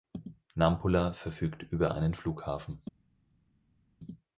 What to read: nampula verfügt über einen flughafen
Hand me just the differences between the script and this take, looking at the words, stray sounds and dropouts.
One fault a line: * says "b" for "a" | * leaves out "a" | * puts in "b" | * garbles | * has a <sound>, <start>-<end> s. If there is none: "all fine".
all fine